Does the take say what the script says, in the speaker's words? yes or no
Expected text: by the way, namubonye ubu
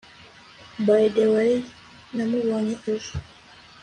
no